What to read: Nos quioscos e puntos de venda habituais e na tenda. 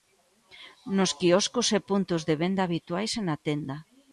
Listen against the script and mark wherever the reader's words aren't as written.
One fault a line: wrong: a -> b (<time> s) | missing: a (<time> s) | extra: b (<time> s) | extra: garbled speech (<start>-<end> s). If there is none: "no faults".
no faults